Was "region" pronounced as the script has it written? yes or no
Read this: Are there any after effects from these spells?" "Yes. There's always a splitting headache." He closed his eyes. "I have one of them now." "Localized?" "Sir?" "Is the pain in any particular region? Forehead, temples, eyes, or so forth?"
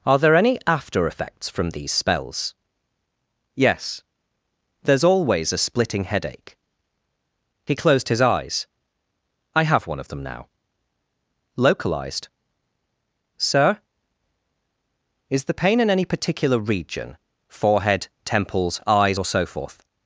yes